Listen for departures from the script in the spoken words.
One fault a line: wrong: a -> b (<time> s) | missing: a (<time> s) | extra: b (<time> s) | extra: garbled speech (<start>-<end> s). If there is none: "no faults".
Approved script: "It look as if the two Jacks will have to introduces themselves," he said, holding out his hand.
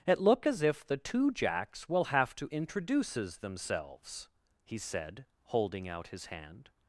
no faults